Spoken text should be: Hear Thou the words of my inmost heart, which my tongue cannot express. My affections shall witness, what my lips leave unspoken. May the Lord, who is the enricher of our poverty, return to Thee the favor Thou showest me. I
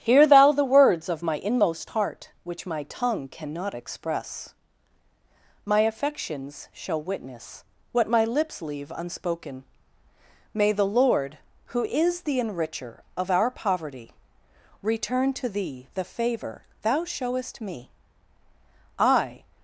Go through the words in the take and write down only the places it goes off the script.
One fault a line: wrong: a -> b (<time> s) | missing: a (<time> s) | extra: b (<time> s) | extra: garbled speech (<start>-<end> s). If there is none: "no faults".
no faults